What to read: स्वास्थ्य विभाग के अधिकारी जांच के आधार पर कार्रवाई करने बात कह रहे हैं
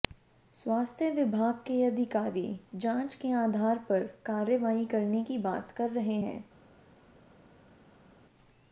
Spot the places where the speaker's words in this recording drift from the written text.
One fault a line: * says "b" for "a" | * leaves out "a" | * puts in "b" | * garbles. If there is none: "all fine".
* puts in "की"